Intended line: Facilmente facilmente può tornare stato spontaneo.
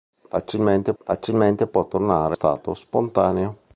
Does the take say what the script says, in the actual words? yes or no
yes